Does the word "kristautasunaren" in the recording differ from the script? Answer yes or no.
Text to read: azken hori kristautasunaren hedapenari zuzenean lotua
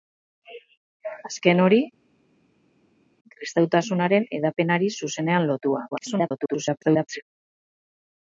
no